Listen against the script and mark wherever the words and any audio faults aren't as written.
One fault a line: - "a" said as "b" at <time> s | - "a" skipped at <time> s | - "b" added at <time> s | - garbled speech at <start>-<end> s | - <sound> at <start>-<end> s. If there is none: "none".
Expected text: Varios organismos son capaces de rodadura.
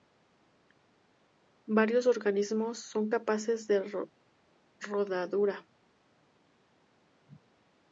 none